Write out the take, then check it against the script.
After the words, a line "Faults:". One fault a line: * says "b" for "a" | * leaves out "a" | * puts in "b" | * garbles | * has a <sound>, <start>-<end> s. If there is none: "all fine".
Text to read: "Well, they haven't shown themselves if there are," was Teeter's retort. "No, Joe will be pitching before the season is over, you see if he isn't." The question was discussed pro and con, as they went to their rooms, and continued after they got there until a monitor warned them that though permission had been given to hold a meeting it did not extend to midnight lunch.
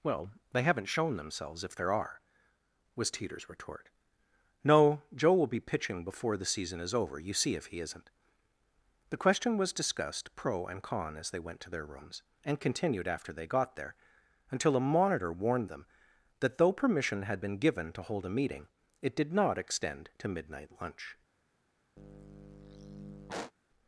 "Well, they haven't shown themselves if there are," was Teeter's retort. "No, Joe will be pitching before the season is over, you see if he isn't." The question was discussed pro and con, as they went to their rooms, and continued after they got there until a monitor warned them that though permission had been given to hold a meeting it did not extend to midnight lunch.
Faults:
* has a sigh, 22.0-23.5 s